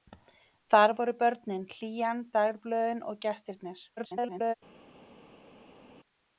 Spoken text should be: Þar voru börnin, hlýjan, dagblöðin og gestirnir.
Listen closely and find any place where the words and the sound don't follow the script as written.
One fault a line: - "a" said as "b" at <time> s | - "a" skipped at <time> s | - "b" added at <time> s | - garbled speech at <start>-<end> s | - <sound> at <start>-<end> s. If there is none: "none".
- garbled speech at 4.0-4.5 s